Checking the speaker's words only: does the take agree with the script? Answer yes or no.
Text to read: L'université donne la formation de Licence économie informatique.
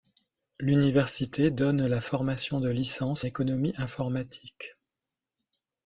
yes